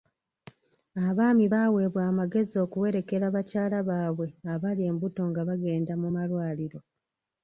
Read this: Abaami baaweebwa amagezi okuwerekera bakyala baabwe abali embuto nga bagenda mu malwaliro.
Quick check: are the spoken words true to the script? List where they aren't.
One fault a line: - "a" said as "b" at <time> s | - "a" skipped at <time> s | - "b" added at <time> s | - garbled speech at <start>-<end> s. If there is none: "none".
none